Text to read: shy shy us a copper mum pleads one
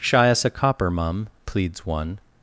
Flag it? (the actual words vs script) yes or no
yes